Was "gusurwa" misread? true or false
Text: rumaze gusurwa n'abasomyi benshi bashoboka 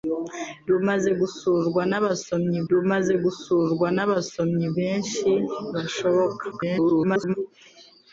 false